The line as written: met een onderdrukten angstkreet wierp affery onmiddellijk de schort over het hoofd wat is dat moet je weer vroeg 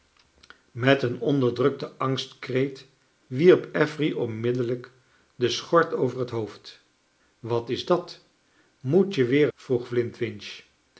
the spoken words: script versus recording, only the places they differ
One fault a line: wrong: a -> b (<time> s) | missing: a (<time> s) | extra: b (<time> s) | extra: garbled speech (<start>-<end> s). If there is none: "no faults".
no faults